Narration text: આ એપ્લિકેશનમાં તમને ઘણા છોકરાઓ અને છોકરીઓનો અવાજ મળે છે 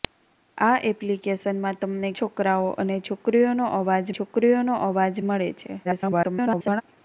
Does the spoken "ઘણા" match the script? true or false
false